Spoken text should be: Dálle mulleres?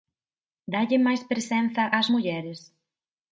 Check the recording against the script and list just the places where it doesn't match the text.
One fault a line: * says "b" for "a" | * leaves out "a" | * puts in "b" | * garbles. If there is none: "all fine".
* puts in "máis presenza ás"